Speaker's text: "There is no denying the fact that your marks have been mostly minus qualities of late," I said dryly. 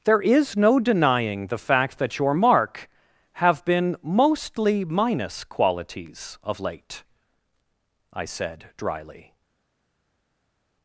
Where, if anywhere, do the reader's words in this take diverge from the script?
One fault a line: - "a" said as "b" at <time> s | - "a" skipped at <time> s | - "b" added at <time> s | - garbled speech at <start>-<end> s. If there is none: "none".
- "marks" said as "mark" at 2.3 s